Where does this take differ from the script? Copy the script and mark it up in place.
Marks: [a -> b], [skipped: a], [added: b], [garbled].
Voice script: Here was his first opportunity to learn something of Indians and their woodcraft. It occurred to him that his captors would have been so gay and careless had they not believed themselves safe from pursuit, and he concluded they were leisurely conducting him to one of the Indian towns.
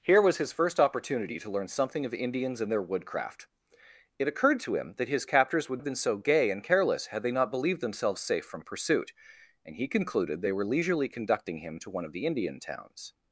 Here was his first opportunity to learn something of Indians and their woodcraft. It occurred to him that his captors would have been so gay and careless had they not believed themselves safe from pursuit, and he concluded they were leisurely conducting him to one of the Indian towns.